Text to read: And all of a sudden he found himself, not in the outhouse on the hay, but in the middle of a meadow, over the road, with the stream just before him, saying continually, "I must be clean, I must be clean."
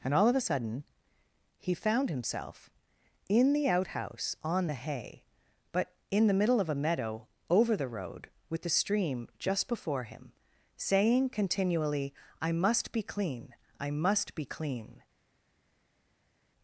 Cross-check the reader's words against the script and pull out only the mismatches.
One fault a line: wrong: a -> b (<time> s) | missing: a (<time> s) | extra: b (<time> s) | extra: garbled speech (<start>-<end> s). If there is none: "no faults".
missing: not (2.7 s)